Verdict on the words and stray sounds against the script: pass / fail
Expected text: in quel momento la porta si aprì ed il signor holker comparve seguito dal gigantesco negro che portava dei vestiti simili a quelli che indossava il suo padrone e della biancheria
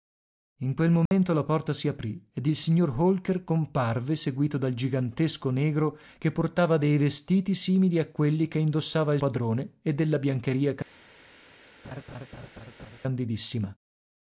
fail